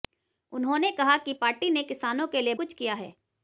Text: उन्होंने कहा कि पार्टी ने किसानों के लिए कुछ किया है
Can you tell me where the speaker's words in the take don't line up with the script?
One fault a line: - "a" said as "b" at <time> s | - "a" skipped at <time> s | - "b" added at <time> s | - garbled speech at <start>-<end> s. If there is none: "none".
none